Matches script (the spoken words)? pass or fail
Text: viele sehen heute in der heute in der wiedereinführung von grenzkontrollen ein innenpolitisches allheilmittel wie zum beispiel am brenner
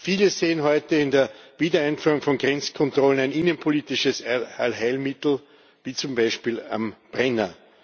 fail